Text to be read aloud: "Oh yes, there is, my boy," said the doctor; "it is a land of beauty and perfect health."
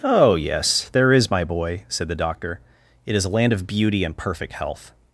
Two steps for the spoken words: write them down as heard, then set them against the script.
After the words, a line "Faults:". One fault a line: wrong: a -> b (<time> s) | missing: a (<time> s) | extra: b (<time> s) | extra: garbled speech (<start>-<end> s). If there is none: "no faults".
"Oh yes, there is, my boy," said the doctor; "it is a land of beauty and perfect health."
Faults:
no faults